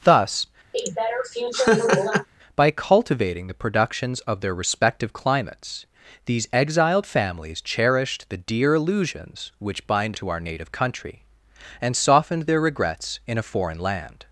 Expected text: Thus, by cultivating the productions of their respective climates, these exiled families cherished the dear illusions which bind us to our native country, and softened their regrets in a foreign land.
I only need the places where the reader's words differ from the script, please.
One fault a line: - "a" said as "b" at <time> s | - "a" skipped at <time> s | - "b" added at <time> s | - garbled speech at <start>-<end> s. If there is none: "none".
- "us" skipped at 10.2 s